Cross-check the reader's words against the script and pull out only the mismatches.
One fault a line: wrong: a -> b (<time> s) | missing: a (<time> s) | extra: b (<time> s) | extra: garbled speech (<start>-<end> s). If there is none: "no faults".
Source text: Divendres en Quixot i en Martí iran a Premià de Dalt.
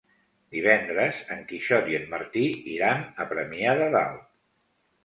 no faults